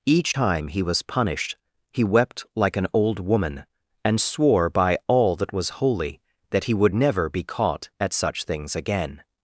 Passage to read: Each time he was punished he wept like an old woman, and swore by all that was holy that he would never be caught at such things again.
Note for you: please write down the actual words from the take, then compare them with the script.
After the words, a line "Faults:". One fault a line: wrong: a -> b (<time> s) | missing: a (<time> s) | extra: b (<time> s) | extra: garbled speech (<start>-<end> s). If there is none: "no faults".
Each time he was punished he wept like an old woman, and swore by all that was holy that he would never be caught at such things again.
Faults:
no faults